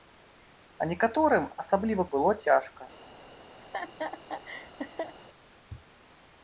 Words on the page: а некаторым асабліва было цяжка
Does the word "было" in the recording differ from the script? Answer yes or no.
no